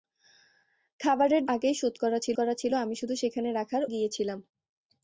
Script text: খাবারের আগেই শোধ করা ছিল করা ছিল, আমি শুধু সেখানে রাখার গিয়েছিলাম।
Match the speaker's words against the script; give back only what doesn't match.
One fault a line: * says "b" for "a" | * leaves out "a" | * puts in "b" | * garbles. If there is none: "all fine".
all fine